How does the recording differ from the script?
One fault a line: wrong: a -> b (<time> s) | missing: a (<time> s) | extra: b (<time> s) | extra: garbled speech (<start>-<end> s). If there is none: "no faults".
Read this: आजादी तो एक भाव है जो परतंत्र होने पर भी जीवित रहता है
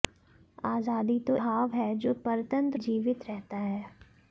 missing: एक (1.4 s)
missing: होने पर भी (2.8 s)